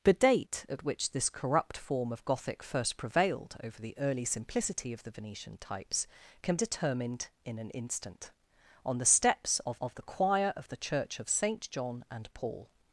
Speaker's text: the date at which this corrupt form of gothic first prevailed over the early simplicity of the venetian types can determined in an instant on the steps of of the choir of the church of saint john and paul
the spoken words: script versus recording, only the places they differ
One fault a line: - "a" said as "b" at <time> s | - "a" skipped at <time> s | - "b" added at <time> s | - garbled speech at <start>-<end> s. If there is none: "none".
none